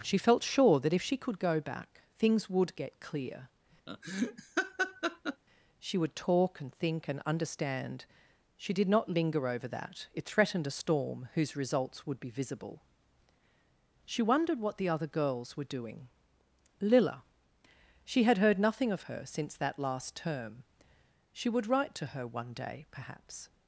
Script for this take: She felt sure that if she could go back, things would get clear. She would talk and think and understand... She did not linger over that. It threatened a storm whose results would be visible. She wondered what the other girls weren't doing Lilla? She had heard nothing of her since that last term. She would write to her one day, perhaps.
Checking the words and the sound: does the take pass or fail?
fail